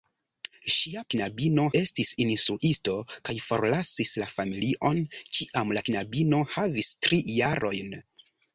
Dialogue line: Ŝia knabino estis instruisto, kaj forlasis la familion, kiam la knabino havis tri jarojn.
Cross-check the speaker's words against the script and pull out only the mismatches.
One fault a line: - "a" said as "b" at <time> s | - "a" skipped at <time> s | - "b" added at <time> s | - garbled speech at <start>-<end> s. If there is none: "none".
none